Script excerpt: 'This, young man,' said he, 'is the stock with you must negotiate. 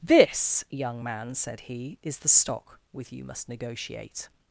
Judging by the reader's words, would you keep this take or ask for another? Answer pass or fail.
pass